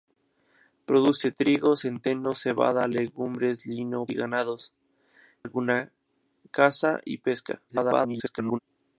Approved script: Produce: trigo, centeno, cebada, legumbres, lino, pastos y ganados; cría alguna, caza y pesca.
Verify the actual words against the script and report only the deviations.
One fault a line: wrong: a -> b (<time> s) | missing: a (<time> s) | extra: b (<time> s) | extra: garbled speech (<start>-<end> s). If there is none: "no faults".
missing: pastos (4.1 s)
missing: cría (4.7 s)
extra: garbled speech (7.7-8.6 s)